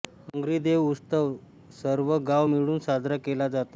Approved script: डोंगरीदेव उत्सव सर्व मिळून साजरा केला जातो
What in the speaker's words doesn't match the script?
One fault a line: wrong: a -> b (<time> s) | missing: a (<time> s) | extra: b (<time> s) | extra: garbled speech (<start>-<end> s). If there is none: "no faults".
extra: गाव (2.3 s)